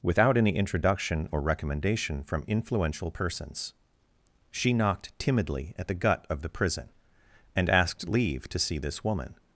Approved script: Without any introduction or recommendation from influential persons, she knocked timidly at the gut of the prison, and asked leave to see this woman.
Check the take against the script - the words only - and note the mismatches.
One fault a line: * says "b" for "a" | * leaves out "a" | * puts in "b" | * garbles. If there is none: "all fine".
all fine